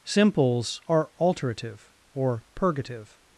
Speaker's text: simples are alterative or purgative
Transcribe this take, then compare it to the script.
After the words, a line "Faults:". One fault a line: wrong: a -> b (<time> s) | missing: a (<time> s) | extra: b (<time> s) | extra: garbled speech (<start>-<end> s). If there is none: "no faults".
simples are alterative or purgative
Faults:
no faults